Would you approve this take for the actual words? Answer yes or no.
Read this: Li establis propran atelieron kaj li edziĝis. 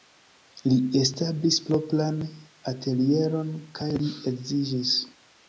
yes